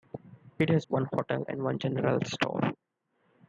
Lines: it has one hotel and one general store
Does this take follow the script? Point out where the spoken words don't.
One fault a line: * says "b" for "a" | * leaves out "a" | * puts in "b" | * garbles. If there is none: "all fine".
all fine